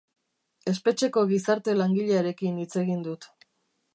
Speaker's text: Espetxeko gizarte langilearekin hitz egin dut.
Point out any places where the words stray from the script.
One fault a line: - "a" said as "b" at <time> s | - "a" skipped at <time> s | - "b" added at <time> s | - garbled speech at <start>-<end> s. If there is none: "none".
none